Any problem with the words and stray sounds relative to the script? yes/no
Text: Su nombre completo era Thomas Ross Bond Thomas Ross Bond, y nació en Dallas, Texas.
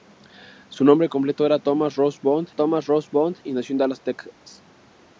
no